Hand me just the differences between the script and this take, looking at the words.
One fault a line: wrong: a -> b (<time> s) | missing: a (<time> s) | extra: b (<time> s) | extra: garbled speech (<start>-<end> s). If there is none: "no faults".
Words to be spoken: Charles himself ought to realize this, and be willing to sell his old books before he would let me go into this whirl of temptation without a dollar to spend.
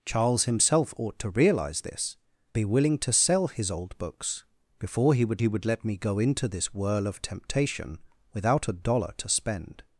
missing: and (2.2 s)
extra: he would (5.4 s)